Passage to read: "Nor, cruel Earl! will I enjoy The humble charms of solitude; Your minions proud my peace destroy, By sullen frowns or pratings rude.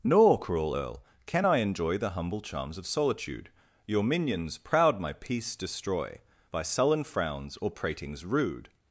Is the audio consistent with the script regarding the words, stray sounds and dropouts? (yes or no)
no